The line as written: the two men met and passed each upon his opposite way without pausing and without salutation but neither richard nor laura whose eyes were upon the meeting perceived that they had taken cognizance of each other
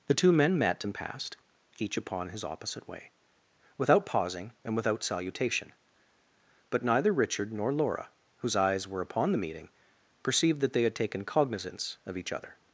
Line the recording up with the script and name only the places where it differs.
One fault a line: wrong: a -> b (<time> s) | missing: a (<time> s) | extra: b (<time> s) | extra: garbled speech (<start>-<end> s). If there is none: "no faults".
no faults